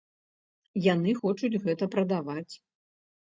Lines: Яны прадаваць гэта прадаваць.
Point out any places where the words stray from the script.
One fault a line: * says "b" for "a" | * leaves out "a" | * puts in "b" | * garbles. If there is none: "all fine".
* says "хочуць" for "прадаваць"